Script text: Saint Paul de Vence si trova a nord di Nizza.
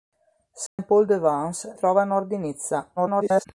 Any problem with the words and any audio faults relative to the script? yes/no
yes